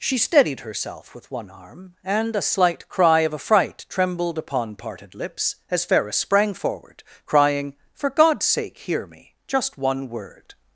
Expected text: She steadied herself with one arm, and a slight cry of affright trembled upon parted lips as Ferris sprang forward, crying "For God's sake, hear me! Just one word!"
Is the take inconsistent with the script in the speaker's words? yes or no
no